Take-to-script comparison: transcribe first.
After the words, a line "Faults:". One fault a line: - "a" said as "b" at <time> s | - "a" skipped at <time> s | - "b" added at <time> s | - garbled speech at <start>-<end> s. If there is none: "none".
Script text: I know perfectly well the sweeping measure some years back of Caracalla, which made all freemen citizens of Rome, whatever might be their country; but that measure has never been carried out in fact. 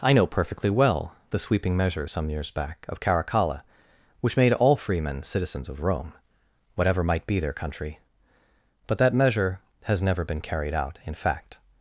I know perfectly well the sweeping measure some years back of Caracalla, which made all freemen citizens of Rome, whatever might be their country; but that measure has never been carried out in fact.
Faults:
none